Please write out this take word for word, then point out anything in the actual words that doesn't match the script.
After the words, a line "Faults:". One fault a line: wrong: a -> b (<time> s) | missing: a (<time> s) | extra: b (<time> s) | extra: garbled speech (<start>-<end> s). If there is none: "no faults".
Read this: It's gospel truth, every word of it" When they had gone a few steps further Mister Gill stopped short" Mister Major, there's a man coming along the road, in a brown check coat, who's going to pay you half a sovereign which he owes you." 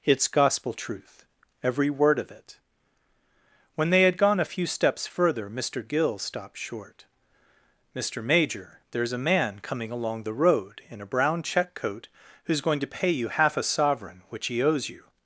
It's gospel truth, every word of it" When they had gone a few steps further Mister Gill stopped short" Mister Major, there's a man coming along the road, in a brown check coat, who's going to pay you half a sovereign which he owes you."
Faults:
no faults